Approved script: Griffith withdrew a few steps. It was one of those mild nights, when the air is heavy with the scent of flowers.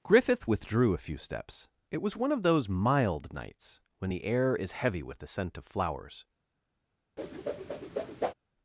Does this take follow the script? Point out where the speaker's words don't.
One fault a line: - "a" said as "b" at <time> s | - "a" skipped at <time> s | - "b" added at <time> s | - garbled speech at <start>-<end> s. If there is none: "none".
none